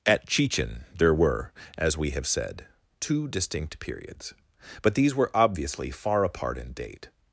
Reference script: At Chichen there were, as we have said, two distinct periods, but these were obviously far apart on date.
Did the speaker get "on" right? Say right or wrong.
wrong